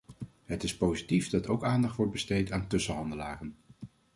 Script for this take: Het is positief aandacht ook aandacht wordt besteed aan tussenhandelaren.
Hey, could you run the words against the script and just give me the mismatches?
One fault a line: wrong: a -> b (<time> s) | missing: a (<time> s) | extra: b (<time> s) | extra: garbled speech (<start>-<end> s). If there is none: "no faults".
wrong: aandacht -> dat (1.3 s)